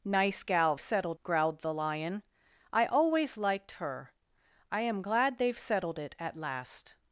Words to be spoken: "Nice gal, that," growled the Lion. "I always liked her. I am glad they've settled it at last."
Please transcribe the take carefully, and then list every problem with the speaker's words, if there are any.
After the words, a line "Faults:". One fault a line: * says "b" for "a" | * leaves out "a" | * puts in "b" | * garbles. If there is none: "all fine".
"Nice gal, settled," growled the Lion. "I always liked her. I am glad they've settled it at last."
Faults:
* says "settled" for "that"